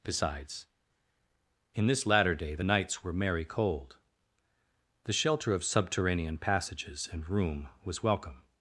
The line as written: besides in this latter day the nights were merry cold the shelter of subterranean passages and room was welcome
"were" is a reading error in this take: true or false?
false